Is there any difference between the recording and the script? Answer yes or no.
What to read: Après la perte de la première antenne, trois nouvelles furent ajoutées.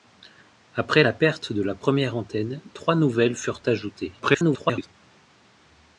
yes